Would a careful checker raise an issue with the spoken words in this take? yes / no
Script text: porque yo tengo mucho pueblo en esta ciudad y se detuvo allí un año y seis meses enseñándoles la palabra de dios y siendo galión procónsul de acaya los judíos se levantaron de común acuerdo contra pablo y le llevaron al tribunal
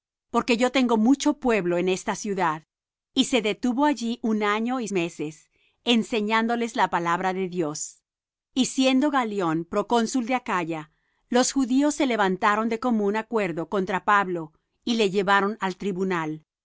yes